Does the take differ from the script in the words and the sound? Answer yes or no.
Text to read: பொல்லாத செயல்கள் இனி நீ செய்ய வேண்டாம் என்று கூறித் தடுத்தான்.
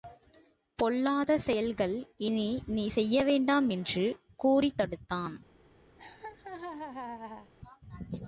yes